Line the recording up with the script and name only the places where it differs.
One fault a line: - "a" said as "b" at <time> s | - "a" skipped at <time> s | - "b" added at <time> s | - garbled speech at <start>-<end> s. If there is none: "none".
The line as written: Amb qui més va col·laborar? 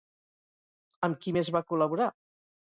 none